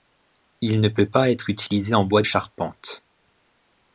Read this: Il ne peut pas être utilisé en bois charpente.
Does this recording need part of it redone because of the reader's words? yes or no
no